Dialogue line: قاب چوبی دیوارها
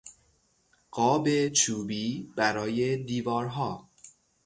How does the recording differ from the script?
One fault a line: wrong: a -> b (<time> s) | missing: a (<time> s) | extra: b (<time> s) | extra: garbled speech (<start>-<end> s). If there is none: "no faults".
extra: برای (2.4 s)